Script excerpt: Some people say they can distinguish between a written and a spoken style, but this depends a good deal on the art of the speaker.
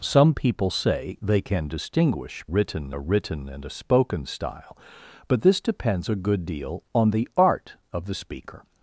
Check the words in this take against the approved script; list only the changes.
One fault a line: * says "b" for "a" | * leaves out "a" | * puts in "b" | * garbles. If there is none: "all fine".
* says "written" for "between"